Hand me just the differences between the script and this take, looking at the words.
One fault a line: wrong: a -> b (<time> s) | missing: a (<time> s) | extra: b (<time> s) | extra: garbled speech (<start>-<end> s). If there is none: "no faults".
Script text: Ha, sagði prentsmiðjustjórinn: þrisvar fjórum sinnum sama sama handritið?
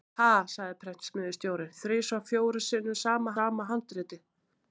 no faults